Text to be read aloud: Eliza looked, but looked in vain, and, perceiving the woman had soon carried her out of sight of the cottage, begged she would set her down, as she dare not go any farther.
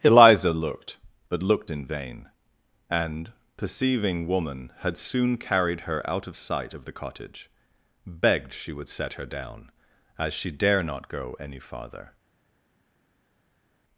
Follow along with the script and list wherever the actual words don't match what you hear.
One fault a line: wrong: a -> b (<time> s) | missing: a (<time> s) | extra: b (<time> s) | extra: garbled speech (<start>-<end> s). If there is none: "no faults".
missing: the (4.3 s)